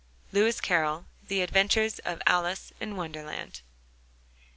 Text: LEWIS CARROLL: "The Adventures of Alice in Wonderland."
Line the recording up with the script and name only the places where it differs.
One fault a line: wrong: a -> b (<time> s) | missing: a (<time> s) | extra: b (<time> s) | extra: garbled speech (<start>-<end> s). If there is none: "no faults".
no faults